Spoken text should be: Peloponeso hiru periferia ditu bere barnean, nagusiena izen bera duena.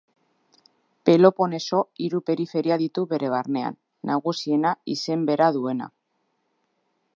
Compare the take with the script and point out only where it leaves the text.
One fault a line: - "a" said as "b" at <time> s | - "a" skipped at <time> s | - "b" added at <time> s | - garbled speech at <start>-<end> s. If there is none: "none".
none